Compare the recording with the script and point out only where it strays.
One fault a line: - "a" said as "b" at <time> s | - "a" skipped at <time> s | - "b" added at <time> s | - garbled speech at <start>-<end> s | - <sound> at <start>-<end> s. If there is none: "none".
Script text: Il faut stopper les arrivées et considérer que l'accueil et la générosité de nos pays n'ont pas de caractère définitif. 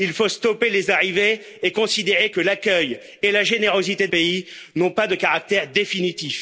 - "nos" skipped at 4.1 s